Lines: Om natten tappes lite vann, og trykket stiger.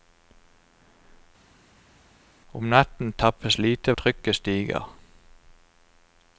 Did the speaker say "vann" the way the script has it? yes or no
no